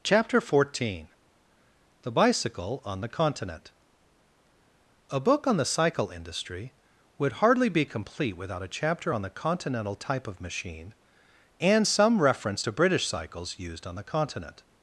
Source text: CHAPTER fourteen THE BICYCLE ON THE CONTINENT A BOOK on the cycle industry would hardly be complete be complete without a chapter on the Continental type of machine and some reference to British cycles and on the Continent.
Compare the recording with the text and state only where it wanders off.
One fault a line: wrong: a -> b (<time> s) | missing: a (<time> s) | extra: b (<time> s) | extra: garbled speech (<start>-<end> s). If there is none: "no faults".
missing: be complete (8.3 s)
wrong: and -> used (13.6 s)